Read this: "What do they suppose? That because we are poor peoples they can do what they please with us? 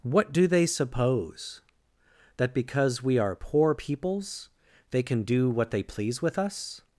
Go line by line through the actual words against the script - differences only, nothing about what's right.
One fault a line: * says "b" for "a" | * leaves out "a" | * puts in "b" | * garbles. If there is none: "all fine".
all fine